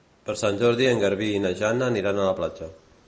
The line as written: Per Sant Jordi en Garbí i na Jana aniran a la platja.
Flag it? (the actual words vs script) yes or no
no